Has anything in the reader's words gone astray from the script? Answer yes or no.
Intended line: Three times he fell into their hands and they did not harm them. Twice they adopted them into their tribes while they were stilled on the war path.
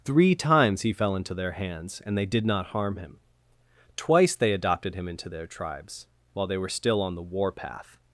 yes